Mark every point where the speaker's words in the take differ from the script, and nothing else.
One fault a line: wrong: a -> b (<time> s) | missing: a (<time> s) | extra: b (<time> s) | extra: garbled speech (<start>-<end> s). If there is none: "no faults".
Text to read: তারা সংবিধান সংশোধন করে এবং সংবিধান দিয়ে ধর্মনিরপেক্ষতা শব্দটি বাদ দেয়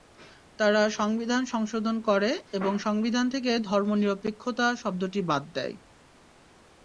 wrong: দিয়ে -> থেকে (3.3 s)